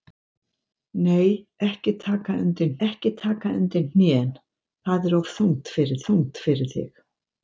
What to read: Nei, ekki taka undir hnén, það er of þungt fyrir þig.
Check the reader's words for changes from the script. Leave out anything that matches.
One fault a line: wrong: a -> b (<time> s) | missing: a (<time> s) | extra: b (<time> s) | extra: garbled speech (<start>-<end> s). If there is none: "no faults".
extra: ekki taka undir (2.9 s)
extra: þungt fyrir (6.1 s)